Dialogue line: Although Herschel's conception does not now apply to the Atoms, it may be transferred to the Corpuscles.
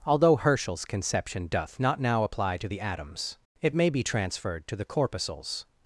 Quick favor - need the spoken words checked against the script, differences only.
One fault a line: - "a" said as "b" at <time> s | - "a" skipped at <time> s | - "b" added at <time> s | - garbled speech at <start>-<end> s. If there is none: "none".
- "does" said as "doth" at 1.5 s